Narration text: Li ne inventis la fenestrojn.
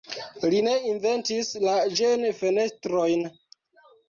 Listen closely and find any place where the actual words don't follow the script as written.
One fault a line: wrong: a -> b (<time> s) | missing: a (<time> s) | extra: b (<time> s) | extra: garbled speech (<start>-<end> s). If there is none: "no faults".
extra: ĝen (2.0 s)